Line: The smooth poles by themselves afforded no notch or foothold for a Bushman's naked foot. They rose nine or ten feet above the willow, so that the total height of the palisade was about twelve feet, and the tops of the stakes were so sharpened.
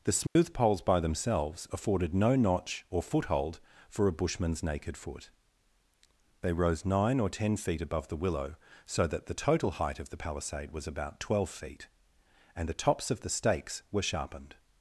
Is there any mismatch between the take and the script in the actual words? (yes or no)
yes